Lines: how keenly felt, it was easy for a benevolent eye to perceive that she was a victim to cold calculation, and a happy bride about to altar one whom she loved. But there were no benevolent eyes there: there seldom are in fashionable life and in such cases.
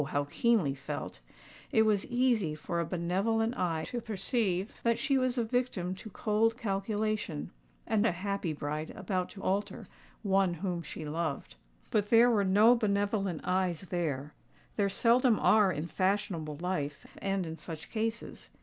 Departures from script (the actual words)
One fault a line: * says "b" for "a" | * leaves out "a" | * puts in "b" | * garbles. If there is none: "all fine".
all fine